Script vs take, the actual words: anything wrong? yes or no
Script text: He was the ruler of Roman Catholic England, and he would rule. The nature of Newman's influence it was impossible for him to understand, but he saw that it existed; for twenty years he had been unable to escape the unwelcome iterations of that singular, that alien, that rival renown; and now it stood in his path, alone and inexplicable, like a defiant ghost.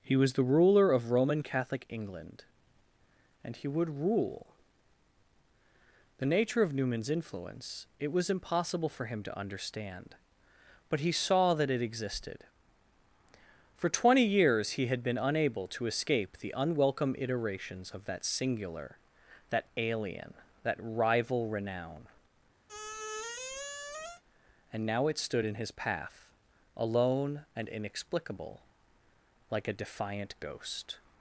no